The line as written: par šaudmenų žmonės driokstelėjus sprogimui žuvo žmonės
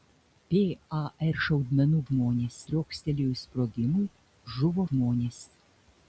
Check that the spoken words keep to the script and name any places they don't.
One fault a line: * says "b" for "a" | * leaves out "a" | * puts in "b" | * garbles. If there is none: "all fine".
all fine